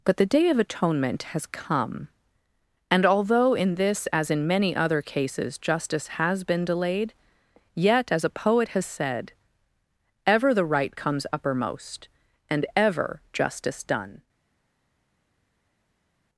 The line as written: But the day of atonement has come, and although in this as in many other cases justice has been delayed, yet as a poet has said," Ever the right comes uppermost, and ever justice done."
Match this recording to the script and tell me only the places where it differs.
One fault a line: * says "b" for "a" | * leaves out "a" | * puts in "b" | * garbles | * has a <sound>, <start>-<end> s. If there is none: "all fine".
all fine